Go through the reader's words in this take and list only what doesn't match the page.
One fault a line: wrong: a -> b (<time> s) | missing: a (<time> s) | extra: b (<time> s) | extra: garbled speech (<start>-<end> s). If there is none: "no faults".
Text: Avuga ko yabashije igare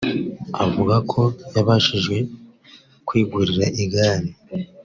extra: kwigurira (3.1 s)